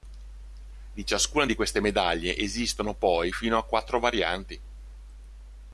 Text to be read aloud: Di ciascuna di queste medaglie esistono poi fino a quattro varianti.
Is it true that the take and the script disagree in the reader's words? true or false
false